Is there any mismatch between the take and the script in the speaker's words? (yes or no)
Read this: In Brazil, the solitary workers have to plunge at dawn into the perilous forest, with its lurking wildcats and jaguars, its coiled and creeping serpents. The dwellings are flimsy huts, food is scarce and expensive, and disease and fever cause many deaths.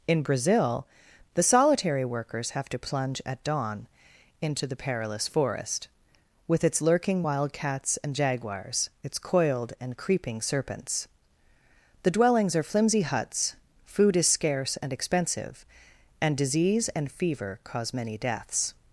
no